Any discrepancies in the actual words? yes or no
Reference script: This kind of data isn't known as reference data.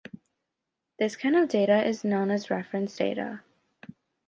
yes